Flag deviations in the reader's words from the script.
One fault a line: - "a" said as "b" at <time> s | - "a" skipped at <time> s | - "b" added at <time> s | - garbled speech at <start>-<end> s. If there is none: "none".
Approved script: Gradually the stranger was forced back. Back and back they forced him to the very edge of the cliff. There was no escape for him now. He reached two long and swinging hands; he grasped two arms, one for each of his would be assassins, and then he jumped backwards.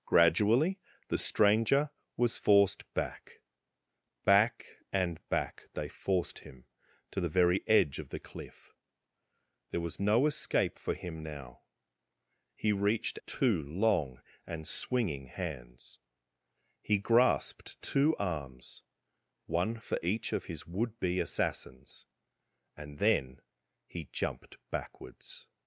none